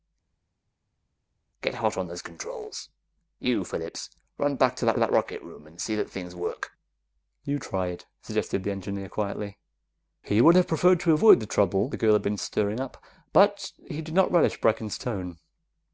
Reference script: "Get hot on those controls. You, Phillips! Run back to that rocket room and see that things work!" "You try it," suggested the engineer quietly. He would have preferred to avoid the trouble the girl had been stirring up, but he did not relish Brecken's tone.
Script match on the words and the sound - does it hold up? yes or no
no